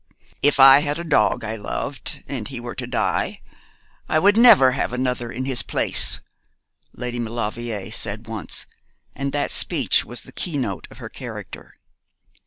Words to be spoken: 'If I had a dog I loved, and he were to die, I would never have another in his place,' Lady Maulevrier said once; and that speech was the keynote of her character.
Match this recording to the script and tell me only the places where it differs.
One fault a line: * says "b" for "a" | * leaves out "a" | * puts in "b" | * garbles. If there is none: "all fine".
all fine